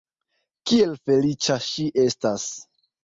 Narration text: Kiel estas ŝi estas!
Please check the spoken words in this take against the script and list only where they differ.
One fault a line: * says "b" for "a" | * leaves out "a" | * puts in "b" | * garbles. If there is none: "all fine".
* says "feliĉa" for "estas"